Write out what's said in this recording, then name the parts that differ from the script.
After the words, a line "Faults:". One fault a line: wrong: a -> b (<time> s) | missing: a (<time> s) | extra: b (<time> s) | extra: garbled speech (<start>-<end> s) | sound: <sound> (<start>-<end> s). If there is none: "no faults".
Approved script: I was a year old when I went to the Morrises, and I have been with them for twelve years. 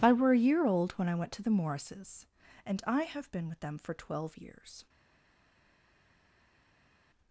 I were a year old when I went to the Morrises, and I have been with them for twelve years.
Faults:
wrong: was -> were (0.1 s)